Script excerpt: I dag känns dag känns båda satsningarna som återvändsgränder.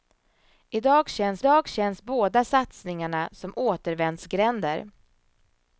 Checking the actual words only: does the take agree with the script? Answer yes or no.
yes